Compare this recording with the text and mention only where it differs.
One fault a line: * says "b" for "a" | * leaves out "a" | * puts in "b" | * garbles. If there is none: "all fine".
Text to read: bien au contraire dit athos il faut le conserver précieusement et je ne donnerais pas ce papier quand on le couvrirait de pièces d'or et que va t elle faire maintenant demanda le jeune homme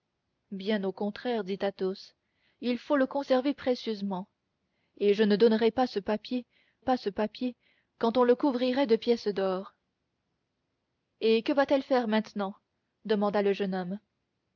* puts in "pas ce papier"